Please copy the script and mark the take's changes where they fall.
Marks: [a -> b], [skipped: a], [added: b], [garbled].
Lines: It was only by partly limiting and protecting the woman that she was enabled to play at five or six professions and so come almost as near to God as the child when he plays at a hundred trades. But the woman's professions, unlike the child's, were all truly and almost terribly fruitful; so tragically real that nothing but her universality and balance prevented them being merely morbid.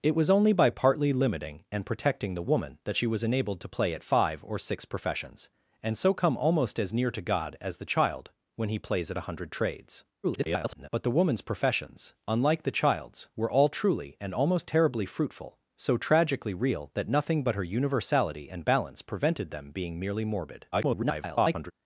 It was only by partly limiting and protecting the woman that she was enabled to play at five or six professions and so come almost as near to God as the child when he plays at a hundred trades. [garbled] But the woman's professions, unlike the child's, were all truly and almost terribly fruitful; so tragically real that nothing but her universality and balance prevented them being merely morbid. [garbled]